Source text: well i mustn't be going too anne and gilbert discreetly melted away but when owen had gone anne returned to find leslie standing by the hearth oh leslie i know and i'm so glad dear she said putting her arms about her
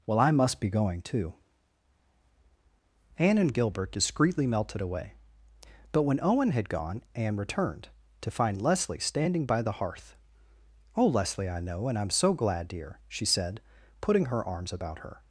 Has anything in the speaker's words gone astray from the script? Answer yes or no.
yes